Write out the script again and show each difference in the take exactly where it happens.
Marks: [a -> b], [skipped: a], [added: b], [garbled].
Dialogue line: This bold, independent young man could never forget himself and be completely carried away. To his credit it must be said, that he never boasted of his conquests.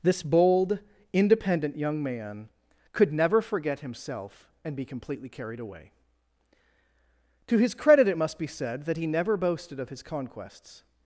This bold, independent young man could never forget himself and be completely carried away. To his credit it must be said, that he never boasted of his conquests.